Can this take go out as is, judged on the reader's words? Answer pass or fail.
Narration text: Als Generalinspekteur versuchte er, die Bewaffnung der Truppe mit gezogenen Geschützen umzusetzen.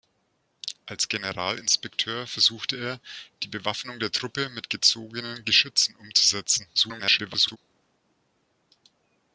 fail